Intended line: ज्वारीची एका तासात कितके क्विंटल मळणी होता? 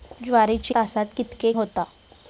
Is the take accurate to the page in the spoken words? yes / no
no